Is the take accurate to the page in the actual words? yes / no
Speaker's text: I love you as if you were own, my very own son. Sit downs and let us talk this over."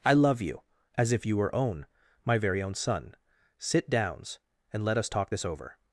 yes